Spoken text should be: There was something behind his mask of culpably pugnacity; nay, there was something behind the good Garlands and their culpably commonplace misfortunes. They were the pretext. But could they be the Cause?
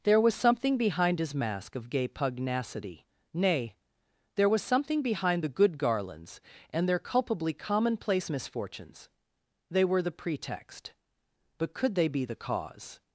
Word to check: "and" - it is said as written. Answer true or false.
true